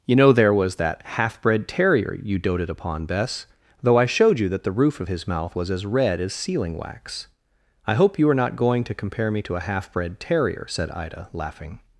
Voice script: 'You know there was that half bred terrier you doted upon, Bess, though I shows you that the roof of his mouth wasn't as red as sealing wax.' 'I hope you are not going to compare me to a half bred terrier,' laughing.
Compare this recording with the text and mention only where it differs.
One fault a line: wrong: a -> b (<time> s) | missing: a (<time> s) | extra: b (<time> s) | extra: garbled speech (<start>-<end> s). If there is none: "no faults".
wrong: shows -> showed (4.0 s)
wrong: wasn't -> was (5.6 s)
extra: said Ida (10.7 s)